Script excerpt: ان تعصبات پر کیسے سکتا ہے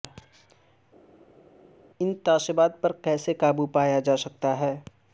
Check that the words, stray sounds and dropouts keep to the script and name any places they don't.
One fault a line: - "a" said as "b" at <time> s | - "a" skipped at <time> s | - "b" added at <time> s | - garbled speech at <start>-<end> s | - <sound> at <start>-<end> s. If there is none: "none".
- "قابو پایا جا" added at 3.4 s